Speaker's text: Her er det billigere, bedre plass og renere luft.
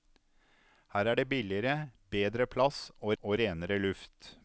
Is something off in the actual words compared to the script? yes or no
yes